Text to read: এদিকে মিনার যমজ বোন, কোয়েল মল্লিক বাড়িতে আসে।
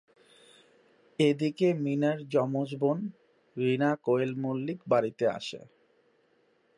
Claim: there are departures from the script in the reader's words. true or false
true